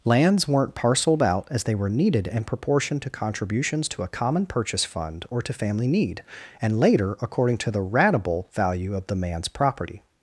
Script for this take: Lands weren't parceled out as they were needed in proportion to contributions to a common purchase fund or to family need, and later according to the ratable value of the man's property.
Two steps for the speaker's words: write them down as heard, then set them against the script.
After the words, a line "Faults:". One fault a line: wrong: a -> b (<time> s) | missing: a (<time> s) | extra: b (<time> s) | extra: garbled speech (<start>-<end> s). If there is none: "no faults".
Lands weren't parceled out as they were needed in proportion to contributions to a common purchase fund or to family need, and later according to the ratable value of the man's property.
Faults:
no faults